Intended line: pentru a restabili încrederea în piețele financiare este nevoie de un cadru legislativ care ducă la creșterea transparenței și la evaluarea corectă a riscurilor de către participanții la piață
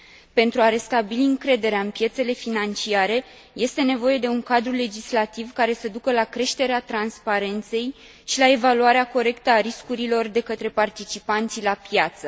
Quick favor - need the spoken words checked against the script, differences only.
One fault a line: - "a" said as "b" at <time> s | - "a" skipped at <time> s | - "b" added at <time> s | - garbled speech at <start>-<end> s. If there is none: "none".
- "să" added at 5.7 s